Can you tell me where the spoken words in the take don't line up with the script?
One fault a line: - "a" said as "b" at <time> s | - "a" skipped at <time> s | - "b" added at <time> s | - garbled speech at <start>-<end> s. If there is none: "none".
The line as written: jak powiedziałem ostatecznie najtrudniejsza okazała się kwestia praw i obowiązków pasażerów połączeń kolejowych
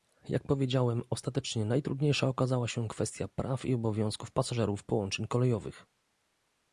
none